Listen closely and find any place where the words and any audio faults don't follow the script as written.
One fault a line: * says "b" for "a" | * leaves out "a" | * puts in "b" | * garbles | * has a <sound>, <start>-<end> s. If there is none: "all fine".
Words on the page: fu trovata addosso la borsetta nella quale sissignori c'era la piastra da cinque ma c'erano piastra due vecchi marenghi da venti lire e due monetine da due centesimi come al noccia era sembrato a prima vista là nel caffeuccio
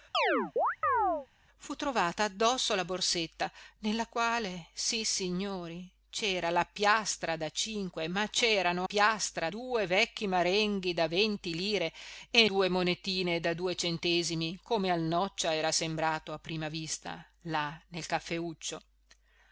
* has a chirp, 0.1-1.3 s